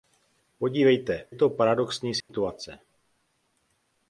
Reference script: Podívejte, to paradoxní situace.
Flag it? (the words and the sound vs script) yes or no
yes